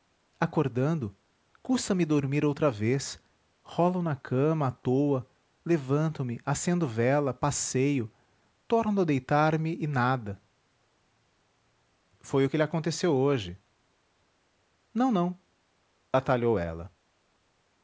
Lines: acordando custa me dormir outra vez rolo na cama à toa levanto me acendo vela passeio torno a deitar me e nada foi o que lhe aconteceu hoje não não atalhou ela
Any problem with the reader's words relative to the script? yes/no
no